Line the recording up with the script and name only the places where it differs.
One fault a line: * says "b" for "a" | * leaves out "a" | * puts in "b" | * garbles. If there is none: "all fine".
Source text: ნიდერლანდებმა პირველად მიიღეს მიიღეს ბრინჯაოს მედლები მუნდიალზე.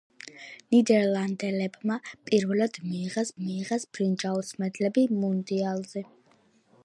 all fine